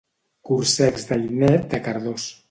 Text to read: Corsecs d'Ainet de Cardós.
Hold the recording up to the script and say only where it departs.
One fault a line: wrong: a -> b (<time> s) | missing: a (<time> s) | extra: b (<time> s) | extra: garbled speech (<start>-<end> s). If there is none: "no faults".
no faults